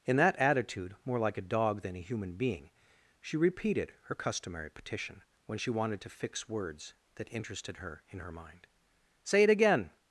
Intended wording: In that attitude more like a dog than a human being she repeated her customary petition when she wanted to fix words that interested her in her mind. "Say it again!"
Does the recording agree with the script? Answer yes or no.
yes